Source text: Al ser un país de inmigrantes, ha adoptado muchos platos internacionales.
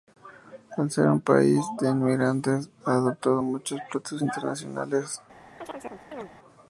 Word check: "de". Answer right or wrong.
right